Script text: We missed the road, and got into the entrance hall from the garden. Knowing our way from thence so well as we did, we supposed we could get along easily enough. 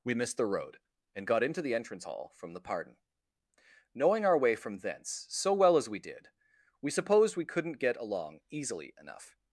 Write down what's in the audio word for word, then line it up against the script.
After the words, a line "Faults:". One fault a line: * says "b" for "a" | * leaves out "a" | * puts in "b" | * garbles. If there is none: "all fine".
We missed the road, and got into the entrance hall from the pardon. Knowing our way from thence so well as we did, we supposed we couldn't get along easily enough.
Faults:
* says "pardon" for "garden"
* says "couldn't" for "could"